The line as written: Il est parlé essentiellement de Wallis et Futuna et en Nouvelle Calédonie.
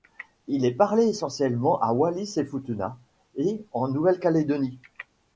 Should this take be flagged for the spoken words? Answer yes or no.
yes